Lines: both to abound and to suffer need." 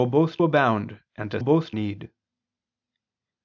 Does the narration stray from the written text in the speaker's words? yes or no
yes